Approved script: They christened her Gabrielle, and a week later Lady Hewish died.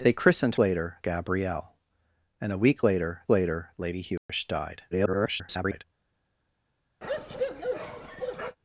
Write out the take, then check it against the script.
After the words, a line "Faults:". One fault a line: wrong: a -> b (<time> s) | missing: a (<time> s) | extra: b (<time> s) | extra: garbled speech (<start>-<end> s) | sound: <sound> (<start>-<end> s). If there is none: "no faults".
They christened later Gabrielle, and a week later later Lady Hewish died. [garbled]
Faults:
wrong: her -> later (0.6 s)
extra: later (3.3 s)
sound: dropout (4.2-4.3 s)
extra: garbled speech (4.9-5.8 s)
sound: bark (7.0-8.6 s)